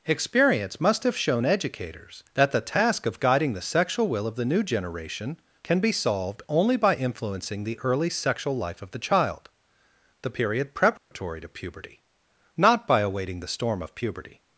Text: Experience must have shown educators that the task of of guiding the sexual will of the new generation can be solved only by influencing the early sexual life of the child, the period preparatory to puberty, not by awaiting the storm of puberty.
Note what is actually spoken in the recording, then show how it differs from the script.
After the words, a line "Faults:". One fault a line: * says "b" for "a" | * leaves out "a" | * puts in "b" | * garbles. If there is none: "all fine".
Experience must have shown educators that the task of guiding the sexual will of the new generation can be solved only by influencing the early sexual life of the child, the period preparatory to puberty, not by awaiting the storm of puberty.
Faults:
* leaves out "of"